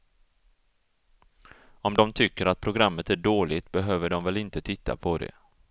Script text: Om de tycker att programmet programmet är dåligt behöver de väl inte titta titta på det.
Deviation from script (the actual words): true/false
true